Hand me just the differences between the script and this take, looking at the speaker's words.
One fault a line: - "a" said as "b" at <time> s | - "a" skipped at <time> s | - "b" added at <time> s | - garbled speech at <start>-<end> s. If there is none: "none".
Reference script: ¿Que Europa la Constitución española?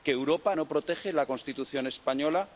- "no protege" added at 0.5 s